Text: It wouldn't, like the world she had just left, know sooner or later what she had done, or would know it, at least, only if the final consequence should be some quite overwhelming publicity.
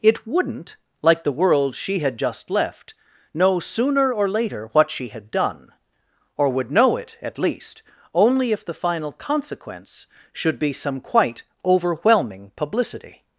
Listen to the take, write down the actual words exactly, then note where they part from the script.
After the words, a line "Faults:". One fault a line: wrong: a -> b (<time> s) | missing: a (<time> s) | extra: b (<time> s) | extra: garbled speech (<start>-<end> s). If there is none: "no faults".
It wouldn't, like the world she had just left, know sooner or later what she had done, or would know it, at least, only if the final consequence should be some quite overwhelming publicity.
Faults:
no faults